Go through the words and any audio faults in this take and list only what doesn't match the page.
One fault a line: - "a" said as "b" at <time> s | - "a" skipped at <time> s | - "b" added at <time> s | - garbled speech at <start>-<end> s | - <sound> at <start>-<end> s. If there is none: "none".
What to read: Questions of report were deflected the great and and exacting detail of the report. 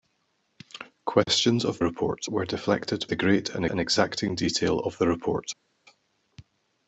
none